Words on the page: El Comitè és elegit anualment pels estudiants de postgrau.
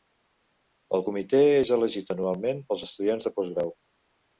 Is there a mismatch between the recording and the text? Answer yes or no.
no